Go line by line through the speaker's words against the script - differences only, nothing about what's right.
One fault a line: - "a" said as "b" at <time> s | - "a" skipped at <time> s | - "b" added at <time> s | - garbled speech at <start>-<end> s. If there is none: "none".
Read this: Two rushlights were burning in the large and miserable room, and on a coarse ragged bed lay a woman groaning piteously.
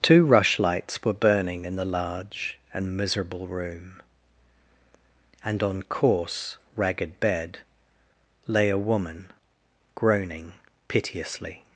- "a" skipped at 5.8 s